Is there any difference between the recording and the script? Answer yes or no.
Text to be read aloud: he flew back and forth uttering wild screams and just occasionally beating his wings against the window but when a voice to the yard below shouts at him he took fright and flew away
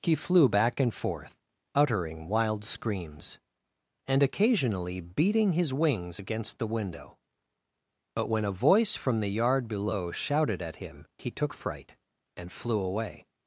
yes